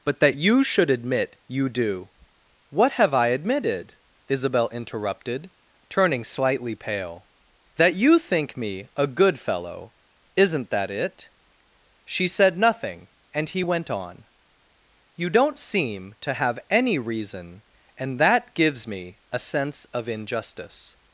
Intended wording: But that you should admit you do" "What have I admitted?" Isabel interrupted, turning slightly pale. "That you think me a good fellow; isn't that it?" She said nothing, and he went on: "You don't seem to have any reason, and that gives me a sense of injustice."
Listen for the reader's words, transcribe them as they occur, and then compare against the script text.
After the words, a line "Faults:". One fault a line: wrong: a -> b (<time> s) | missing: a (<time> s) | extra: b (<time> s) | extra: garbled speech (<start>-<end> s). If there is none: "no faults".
But that you should admit you do" "What have I admitted?" Isabel interrupted, turning slightly pale. "That you think me a good fellow; isn't that it?" She said nothing, and he went on: "You don't seem to have any reason, and that gives me a sense of injustice."
Faults:
no faults